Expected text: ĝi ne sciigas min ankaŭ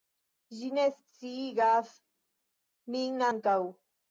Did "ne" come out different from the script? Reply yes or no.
no